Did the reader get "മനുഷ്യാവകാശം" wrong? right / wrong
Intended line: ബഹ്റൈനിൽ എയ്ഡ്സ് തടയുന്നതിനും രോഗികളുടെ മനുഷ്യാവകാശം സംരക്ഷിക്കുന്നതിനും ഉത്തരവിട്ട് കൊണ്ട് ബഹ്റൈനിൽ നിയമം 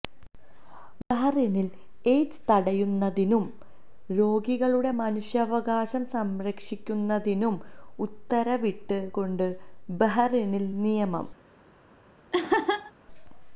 right